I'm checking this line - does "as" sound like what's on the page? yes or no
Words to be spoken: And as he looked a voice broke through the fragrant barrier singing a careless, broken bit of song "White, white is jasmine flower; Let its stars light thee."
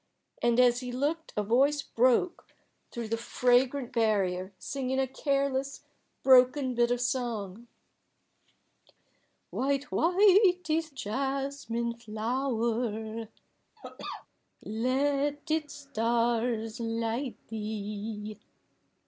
yes